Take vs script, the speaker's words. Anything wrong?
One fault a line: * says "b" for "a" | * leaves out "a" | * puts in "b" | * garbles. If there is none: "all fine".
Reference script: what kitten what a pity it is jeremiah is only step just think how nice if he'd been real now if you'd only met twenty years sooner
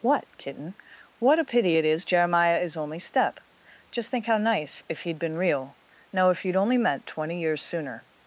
all fine